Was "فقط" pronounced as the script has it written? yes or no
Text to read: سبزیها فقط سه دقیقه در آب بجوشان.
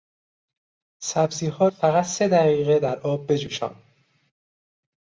yes